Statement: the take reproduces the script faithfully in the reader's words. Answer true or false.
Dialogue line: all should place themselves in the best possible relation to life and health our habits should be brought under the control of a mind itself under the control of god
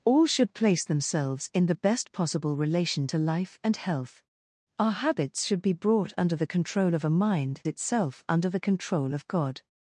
true